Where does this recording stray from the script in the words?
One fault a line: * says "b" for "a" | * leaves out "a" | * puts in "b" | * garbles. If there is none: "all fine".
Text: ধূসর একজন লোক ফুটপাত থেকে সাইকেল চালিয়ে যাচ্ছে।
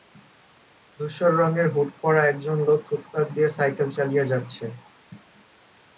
* puts in "রঙের হুড পরা"
* says "দিয়ে" for "থেকে"